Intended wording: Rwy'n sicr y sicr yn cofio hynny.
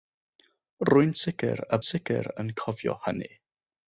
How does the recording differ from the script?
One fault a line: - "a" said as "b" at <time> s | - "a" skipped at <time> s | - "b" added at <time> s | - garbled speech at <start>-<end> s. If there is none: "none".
none